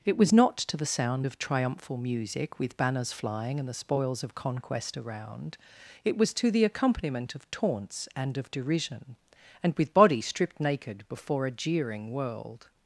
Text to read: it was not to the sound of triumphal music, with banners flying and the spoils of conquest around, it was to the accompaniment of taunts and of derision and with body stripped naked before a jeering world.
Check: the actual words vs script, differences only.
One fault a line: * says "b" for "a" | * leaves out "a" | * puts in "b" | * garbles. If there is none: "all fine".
all fine